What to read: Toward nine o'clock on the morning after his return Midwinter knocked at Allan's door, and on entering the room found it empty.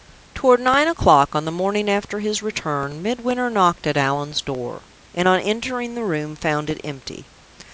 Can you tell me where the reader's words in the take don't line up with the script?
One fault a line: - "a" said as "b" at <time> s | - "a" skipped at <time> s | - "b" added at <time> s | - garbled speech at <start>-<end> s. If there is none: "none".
none